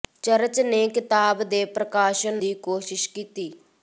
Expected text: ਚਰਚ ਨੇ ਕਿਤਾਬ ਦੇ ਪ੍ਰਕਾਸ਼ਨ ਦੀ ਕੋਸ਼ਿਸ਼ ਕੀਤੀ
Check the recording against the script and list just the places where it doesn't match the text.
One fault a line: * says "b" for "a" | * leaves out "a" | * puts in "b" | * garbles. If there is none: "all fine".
all fine